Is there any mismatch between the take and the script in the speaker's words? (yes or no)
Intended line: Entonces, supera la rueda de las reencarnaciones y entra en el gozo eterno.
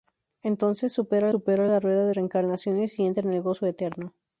yes